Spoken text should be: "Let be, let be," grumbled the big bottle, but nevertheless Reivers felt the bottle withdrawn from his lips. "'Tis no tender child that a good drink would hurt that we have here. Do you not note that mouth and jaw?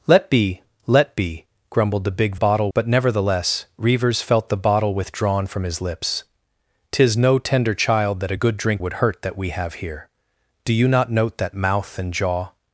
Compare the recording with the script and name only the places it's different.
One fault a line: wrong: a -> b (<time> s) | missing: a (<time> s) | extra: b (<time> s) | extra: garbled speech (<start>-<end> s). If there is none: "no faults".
no faults